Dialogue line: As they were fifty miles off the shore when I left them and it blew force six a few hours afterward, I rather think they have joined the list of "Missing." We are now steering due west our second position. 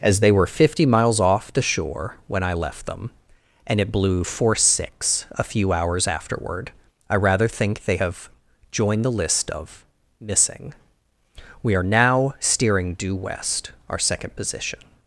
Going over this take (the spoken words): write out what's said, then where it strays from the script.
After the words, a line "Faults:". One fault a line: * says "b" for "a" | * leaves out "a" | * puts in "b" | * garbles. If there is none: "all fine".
As they were fifty miles off the shore when I left them and it blew force six a few hours afterward, I rather think they have joined the list of "Missing." We are now steering due west our second position.
Faults:
all fine